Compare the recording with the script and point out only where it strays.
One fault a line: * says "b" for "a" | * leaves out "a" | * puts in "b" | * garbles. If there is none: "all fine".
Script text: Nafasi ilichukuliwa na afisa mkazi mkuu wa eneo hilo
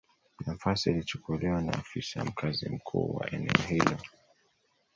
all fine